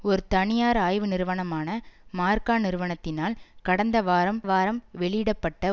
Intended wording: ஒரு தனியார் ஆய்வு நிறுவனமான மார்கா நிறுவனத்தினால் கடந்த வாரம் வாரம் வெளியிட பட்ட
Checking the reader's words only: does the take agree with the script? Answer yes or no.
yes